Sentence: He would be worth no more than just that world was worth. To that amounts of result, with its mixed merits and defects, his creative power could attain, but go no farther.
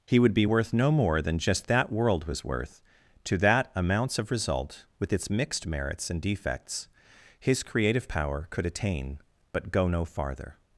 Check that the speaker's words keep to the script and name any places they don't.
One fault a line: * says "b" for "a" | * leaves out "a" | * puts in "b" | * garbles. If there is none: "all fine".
all fine